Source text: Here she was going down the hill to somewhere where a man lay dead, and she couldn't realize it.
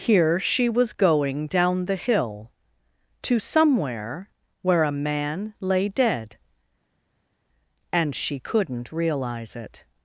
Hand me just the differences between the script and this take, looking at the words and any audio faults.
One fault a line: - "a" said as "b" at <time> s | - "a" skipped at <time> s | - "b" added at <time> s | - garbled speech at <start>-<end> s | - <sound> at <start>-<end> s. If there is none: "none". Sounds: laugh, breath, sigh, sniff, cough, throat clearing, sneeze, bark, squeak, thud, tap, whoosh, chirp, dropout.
none